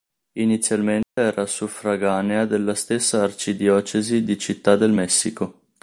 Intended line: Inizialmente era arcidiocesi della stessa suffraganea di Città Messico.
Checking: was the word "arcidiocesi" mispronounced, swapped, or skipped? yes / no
yes